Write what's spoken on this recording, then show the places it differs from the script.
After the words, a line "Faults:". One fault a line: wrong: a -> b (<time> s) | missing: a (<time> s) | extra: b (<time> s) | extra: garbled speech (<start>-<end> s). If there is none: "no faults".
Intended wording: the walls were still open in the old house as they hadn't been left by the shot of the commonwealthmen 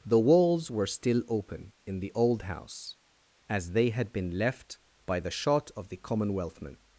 the walls were still open in the old house as they had been left by the shot of the commonwealthmen
Faults:
wrong: hadn't -> had (3.9 s)